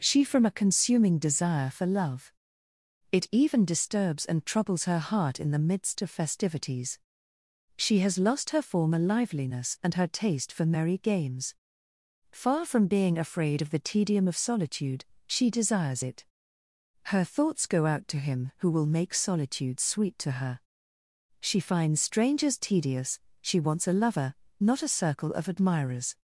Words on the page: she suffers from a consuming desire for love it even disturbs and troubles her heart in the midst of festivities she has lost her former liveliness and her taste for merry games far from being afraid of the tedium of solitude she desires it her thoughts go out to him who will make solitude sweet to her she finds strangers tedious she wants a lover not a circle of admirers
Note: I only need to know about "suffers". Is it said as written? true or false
false